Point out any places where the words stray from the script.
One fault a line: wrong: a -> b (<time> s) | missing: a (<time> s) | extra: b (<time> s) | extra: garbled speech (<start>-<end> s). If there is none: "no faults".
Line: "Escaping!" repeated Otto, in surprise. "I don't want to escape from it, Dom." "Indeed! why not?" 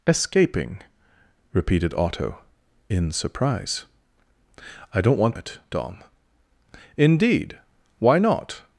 missing: to escape from (5.3 s)